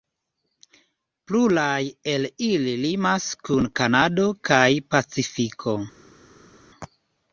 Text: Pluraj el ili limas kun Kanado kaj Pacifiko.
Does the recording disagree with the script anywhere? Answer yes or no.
no